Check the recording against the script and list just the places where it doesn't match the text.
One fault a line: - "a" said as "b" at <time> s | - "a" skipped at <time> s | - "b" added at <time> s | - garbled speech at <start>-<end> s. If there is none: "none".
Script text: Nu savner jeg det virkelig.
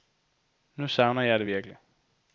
none